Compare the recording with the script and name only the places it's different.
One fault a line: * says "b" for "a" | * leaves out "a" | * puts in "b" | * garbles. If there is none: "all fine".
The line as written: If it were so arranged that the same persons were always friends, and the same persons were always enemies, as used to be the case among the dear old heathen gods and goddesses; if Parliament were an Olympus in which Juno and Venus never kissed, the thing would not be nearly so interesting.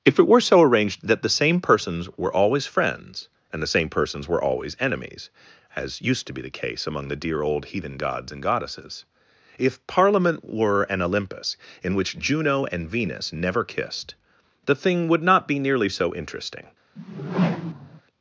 all fine